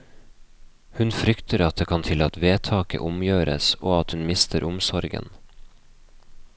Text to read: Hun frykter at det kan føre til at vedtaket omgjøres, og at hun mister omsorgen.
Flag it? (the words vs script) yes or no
yes